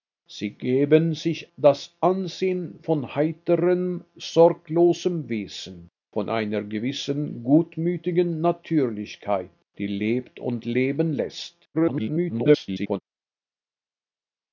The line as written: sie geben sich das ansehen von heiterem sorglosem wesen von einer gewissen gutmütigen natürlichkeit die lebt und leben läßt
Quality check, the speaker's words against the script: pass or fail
fail